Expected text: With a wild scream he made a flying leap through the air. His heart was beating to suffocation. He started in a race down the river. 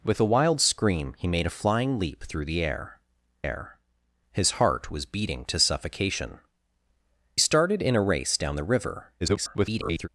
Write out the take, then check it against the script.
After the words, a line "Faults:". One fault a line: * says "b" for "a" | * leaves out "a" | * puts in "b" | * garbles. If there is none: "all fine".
With a wild scream he made a flying leap through the air air. His heart was beating to suffocation. Started in a race down the river. [garbled]
Faults:
* puts in "air"
* leaves out "He"
* garbles